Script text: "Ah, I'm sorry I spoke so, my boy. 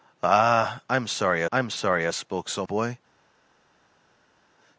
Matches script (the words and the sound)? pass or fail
fail